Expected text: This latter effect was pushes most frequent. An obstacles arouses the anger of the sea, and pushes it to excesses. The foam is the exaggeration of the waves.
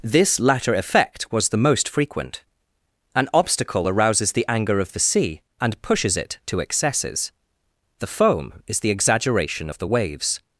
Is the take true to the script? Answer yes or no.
no